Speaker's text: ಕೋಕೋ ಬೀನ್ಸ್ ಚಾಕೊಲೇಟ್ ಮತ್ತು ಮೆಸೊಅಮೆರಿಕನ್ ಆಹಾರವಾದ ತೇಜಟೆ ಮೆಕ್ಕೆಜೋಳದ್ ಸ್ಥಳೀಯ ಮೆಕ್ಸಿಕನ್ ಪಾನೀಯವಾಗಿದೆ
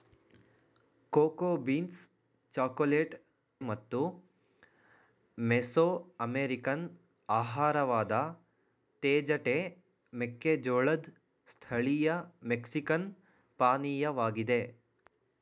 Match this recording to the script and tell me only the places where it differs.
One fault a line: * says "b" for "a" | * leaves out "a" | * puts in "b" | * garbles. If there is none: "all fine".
all fine